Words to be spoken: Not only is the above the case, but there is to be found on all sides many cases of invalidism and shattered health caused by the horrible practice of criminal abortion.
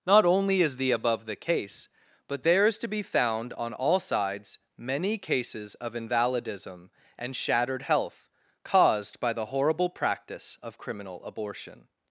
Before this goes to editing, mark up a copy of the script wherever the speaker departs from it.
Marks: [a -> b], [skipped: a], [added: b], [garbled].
Not only is the above the case, but there is to be found on all sides many cases of invalidism and shattered health caused by the horrible practice of criminal abortion.